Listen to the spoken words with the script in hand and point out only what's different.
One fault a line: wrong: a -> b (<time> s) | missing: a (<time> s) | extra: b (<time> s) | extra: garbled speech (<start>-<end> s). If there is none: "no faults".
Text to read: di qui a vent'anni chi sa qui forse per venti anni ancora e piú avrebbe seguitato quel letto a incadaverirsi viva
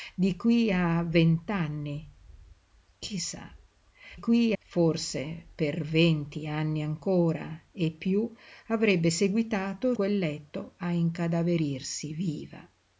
no faults